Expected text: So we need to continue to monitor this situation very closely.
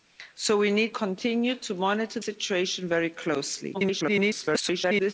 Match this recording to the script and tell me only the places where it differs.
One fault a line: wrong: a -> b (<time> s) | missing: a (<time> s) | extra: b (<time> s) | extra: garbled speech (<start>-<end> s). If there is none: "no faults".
missing: to (0.9 s)
missing: this (2.2 s)
extra: garbled speech (3.7-5.1 s)